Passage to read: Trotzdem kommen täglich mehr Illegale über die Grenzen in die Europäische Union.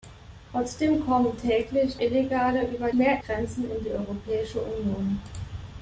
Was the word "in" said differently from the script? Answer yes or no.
no